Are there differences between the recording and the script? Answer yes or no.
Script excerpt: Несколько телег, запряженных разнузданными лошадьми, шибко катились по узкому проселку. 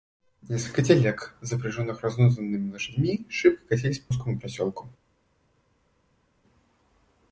no